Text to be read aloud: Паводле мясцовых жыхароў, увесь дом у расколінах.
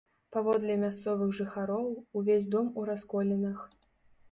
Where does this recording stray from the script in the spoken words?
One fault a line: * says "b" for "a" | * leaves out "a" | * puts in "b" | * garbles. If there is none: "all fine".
all fine